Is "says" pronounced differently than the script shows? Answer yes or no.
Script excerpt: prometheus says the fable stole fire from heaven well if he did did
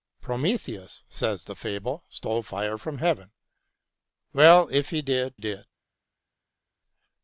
no